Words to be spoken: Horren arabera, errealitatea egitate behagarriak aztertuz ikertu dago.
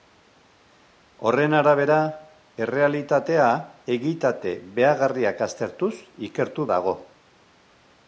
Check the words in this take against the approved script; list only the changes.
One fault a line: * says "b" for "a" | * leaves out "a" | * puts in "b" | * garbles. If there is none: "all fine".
all fine